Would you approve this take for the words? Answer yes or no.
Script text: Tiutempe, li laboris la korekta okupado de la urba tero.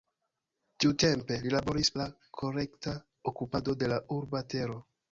yes